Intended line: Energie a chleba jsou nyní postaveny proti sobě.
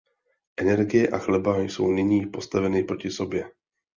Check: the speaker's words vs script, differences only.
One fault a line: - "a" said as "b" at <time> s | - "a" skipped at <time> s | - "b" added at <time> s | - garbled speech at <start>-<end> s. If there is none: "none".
none